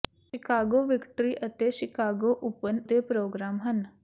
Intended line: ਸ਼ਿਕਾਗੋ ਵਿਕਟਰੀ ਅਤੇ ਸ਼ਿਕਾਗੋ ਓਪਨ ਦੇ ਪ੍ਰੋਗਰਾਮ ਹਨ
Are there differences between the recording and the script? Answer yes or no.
no